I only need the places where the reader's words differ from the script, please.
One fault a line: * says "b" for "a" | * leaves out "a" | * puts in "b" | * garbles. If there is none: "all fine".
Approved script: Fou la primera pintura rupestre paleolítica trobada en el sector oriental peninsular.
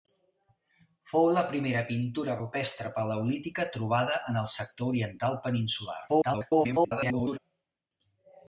* garbles